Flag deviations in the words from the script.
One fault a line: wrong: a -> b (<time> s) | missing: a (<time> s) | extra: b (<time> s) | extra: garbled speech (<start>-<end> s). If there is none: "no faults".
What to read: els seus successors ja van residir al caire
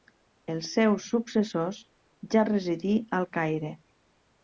missing: van (2.5 s)